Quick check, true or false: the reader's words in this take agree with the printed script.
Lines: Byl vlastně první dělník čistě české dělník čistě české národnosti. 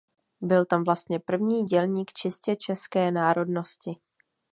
false